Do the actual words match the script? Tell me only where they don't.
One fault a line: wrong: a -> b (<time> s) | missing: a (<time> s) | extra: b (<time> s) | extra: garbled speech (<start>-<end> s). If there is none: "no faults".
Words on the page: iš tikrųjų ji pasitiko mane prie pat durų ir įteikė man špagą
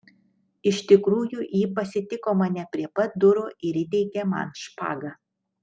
no faults